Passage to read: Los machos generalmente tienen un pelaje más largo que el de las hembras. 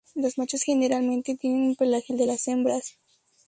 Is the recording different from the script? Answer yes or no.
yes